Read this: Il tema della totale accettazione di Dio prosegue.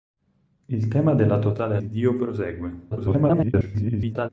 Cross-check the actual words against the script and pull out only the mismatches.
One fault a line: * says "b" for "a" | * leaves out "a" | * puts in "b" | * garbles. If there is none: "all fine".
* leaves out "accettazione"
* garbles